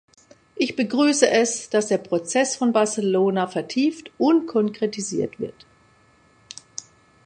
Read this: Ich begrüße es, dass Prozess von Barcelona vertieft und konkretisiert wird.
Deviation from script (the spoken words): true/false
true